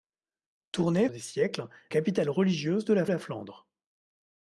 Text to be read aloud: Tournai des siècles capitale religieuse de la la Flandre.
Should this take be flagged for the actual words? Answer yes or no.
no